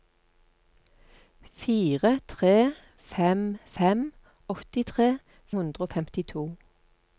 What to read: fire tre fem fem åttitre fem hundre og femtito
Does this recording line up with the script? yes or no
no